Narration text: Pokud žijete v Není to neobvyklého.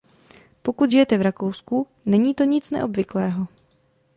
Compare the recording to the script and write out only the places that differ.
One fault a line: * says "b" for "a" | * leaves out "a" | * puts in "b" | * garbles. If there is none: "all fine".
* puts in "Rakousku"
* puts in "nic"